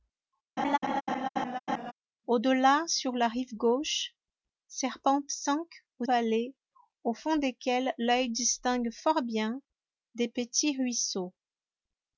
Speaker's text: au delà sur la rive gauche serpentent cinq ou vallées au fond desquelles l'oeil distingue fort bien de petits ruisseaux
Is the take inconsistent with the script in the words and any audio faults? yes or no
yes